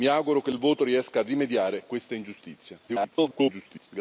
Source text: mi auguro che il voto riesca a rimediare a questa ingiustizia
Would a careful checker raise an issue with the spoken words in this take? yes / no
yes